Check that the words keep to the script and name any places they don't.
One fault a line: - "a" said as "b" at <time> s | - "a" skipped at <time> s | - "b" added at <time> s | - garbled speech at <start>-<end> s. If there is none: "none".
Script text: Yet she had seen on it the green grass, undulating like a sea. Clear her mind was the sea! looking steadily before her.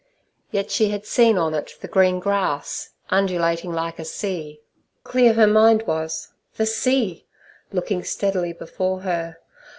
none